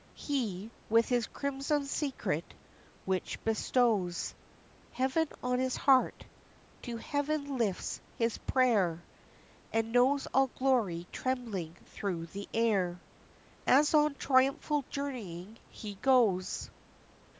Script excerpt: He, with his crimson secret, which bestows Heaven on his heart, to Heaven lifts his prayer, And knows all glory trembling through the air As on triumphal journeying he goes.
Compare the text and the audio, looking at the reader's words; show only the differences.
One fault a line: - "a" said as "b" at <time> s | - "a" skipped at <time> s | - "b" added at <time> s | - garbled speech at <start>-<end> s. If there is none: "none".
none